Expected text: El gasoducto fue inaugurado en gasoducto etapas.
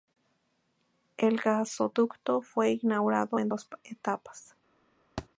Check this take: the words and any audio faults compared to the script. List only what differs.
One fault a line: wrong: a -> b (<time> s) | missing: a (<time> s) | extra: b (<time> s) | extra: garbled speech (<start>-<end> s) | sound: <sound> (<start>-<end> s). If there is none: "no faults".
wrong: gasoducto -> dos (3.5 s)
sound: thud (5.2-5.3 s)